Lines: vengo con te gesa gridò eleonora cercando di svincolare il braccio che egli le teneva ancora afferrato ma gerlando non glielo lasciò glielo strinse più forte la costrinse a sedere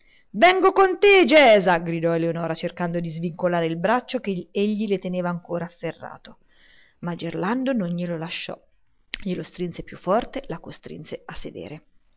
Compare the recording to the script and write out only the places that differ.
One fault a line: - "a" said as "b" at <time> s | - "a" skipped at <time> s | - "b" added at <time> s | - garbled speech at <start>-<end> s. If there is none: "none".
none